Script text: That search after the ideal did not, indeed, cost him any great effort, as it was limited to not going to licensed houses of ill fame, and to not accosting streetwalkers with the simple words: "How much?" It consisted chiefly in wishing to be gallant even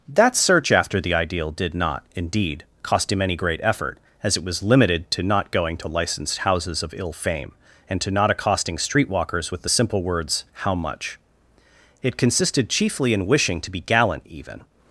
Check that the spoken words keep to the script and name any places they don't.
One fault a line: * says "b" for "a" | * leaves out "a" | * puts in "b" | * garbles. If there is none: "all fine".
all fine